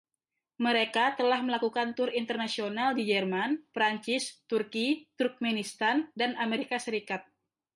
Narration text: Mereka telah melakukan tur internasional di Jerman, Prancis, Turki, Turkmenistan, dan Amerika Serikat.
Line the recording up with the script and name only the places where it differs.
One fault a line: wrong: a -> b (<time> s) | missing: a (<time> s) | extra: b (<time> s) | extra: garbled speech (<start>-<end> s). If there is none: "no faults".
no faults